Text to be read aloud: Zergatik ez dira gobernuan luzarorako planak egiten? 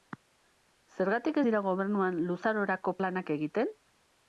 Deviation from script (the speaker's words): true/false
false